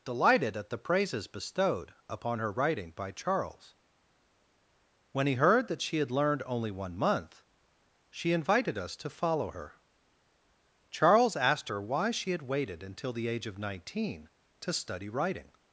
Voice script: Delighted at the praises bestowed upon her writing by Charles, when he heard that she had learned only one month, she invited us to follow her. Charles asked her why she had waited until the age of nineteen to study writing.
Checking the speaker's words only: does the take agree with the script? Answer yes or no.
yes